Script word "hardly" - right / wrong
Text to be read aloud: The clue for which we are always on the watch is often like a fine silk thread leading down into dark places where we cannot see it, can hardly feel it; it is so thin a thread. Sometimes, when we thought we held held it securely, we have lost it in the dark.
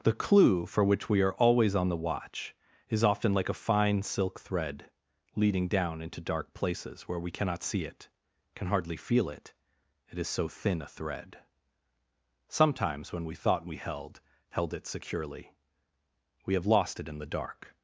right